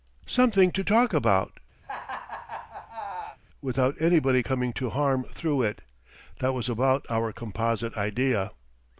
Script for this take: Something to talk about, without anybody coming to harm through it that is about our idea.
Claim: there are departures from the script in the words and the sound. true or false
true